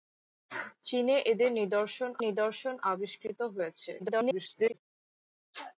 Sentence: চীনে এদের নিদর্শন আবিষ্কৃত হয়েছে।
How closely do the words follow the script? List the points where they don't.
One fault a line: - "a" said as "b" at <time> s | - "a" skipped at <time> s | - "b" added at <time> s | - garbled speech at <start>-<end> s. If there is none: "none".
- "নিদর্শন" added at 2.2 s
- garbled speech at 4.0-4.7 s